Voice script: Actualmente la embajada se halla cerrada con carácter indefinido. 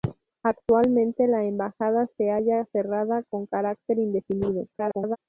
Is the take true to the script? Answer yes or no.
no